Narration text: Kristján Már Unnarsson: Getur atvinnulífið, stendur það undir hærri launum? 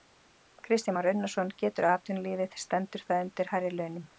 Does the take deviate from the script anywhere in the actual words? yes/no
no